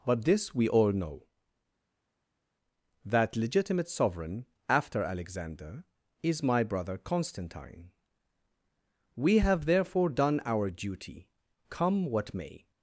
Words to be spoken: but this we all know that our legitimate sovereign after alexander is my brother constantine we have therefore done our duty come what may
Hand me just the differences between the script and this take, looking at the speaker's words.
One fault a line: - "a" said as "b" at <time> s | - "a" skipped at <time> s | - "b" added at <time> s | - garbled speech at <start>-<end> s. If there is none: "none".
- "our" skipped at 3.4 s